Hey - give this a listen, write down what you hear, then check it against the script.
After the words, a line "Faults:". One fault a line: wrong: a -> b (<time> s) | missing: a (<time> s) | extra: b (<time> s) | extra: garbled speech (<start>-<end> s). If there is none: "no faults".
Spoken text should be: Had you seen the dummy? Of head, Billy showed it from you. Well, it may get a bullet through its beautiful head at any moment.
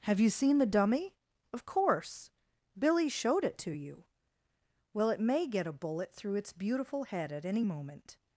Have you seen the dummy? Of course, Billy showed it to you. Well, it may get a bullet through its beautiful head at any moment.
Faults:
wrong: Had -> Have (0.1 s)
wrong: head -> course (1.6 s)
wrong: from -> to (3.6 s)